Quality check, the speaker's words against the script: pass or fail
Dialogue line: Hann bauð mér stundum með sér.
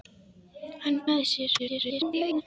fail